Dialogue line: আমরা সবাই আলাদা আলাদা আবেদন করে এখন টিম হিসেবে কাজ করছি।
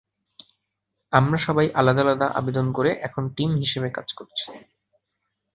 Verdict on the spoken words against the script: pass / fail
pass